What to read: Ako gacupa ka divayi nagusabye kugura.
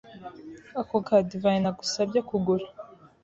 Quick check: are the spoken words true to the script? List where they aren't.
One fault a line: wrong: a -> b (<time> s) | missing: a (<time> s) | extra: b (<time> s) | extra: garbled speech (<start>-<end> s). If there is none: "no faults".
missing: gacupa (0.9 s)